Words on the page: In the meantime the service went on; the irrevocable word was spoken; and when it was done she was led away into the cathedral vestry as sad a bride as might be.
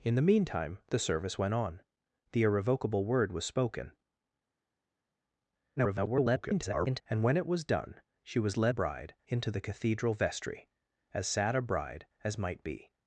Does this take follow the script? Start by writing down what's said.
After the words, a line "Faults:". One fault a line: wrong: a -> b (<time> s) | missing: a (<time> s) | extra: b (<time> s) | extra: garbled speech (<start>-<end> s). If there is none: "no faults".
In the meantime the service went on; the irrevocable word was spoken; [garbled] and when it was done she was led bride into the cathedral vestry as sad a bride as might be.
Faults:
extra: garbled speech (5.8-7.0 s)
wrong: away -> bride (8.7 s)